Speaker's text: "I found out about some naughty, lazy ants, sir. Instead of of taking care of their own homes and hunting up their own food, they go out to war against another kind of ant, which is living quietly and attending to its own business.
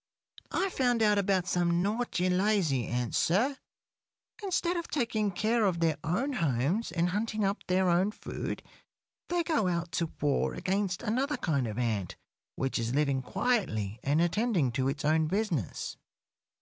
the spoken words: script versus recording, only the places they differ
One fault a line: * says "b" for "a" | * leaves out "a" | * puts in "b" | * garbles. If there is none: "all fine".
* leaves out "of"